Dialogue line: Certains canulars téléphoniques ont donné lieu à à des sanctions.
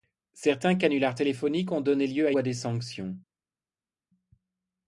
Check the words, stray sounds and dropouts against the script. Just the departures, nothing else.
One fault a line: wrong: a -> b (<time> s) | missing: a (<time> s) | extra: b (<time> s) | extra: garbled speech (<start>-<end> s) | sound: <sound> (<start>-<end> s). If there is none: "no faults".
no faults